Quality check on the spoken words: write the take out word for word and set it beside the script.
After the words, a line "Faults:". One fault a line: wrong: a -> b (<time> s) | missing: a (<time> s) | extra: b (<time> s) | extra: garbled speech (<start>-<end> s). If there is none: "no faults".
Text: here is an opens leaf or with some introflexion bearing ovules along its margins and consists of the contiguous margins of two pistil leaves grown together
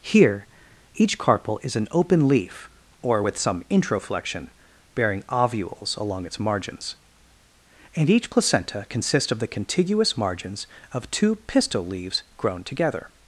here each carpel is an open leaf or with some introflexion bearing ovules along its margins and each placenta consists of the contiguous margins of two pistil leaves grown together
Faults:
extra: each carpel (0.9 s)
wrong: opens -> open (1.9 s)
extra: each placenta (8.1 s)